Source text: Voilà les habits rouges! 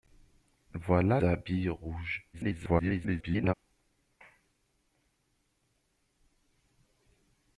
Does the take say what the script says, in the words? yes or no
no